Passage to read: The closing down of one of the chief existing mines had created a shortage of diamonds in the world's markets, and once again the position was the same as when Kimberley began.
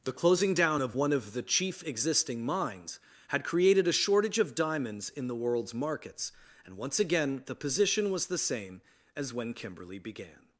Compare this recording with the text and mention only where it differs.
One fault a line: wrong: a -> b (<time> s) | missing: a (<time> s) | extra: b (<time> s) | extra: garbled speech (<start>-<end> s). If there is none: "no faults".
no faults